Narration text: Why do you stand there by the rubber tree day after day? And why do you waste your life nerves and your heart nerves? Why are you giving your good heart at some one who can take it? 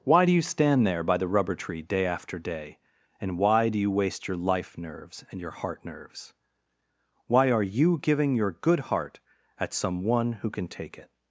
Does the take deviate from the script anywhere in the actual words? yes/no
no